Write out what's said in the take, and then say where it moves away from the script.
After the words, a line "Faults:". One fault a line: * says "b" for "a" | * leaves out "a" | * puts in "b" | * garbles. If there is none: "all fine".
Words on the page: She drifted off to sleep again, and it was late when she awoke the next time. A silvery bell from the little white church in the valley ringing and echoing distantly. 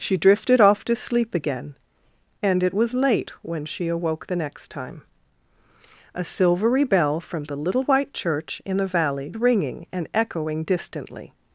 She drifted off to sleep again, and it was late when she awoke the next time. A silvery bell from the little white church in the valley ringing and echoing distantly.
Faults:
all fine